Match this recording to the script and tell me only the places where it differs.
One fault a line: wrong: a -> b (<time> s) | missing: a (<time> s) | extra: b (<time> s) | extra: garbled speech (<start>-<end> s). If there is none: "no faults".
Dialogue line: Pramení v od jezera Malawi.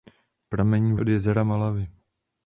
no faults